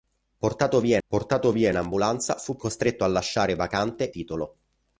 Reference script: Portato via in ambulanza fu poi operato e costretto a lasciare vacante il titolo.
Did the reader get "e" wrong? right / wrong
wrong